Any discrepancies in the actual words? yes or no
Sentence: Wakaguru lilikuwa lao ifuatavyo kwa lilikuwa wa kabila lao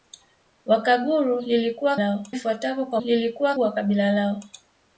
no